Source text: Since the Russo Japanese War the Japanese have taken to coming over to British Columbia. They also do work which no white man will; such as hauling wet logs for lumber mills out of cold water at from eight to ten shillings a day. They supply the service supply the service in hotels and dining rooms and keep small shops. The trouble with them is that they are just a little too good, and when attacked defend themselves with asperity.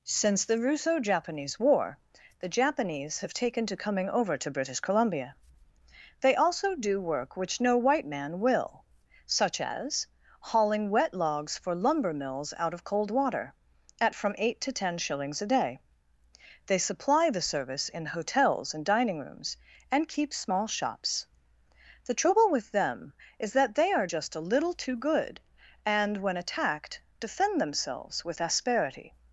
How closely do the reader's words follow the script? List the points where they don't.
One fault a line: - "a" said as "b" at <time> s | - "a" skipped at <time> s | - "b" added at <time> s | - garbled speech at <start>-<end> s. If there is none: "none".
- "supply the service" skipped at 17.9 s